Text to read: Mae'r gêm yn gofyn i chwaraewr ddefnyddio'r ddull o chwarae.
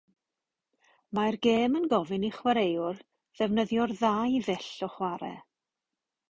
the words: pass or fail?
fail